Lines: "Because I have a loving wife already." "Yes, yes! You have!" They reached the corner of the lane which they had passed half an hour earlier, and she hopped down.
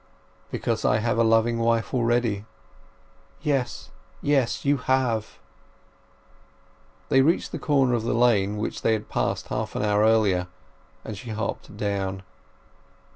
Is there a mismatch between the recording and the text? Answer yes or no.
no